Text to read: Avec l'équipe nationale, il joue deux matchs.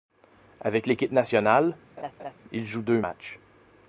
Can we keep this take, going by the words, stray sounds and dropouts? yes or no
no